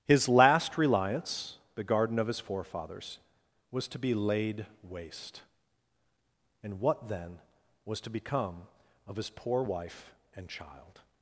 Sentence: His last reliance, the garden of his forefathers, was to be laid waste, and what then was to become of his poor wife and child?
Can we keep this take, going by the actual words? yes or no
yes